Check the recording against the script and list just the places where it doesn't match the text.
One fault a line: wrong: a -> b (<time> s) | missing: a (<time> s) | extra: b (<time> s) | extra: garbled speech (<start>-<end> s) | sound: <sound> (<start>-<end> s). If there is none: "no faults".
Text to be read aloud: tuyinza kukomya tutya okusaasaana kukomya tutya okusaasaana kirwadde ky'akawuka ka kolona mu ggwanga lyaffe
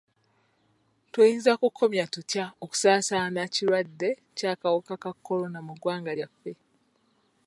missing: kukomya tutya okusaasaana (3.4 s)